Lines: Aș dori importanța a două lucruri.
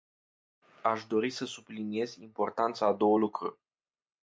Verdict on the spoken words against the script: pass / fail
fail